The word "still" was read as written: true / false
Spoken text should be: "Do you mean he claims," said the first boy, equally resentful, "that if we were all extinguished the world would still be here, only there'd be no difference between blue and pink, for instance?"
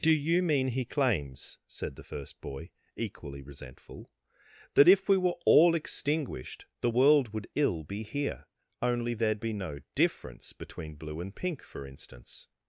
false